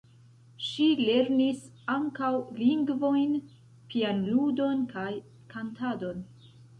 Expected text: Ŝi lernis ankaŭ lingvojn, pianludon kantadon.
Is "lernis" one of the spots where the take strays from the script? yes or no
no